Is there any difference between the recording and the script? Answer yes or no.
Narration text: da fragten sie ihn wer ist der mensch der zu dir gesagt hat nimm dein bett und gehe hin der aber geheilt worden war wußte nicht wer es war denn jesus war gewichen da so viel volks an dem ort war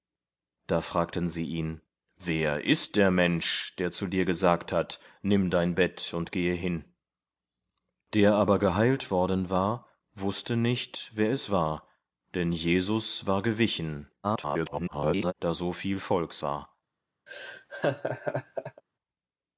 yes